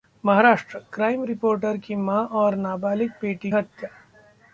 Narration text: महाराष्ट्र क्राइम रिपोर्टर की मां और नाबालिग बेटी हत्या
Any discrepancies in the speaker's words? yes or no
no